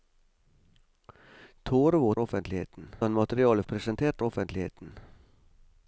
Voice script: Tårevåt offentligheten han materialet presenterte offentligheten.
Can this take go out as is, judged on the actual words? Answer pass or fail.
pass